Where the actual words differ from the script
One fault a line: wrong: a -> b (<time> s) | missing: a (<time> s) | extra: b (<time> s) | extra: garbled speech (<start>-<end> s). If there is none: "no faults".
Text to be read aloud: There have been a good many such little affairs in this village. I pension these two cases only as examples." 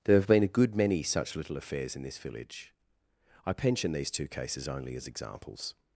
no faults